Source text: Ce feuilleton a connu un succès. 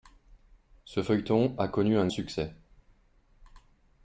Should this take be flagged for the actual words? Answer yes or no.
no